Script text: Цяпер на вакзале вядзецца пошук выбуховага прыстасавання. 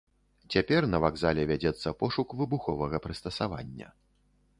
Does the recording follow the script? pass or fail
pass